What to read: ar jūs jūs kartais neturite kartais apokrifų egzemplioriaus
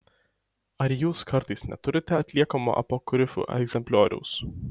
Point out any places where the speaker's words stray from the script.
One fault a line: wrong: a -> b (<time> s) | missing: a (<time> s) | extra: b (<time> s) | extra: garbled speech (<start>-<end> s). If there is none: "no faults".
missing: jūs (1.2 s)
wrong: kartais -> atliekamo (2.2 s)